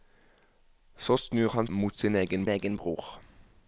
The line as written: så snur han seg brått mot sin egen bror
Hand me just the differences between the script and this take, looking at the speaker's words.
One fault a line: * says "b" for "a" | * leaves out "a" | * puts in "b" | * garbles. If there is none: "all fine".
* leaves out "seg brått"
* puts in "egen"